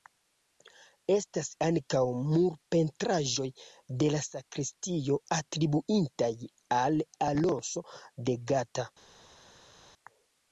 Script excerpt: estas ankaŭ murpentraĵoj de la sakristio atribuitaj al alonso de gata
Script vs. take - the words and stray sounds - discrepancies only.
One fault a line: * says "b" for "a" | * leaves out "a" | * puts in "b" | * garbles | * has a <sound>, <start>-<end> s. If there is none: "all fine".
all fine